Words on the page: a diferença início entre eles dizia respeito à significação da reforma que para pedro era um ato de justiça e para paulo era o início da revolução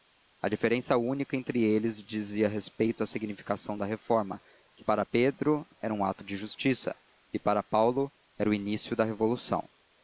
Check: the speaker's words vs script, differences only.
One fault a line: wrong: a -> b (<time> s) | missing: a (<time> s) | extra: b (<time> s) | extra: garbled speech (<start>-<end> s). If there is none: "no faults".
wrong: início -> única (1.0 s)